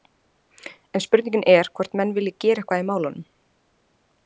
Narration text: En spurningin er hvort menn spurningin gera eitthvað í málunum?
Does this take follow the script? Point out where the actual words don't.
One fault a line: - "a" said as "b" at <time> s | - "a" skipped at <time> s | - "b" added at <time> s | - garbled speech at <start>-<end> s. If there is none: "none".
- "spurningin" said as "vilji" at 2.2 s